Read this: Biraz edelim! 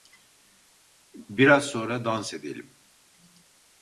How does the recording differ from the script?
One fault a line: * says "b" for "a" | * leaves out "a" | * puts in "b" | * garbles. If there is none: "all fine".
* puts in "sonra dans"